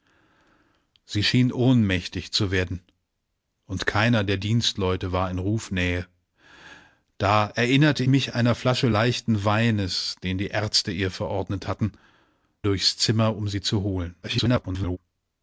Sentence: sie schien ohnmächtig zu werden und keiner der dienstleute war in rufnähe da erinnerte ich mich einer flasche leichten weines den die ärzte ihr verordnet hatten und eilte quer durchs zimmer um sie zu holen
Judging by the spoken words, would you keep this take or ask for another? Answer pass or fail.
fail